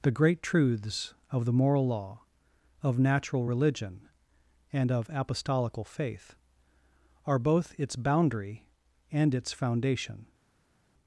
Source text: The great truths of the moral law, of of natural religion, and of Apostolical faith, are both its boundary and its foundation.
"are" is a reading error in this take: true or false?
false